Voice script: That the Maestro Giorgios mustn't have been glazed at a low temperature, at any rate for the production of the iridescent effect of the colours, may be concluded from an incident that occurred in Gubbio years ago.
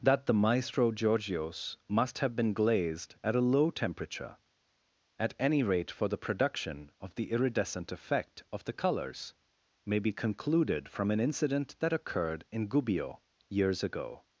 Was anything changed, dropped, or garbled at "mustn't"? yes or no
yes